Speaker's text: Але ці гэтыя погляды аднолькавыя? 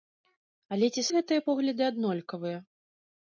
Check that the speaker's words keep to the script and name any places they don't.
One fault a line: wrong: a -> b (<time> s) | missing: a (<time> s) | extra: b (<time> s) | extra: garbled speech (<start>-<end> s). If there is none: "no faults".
no faults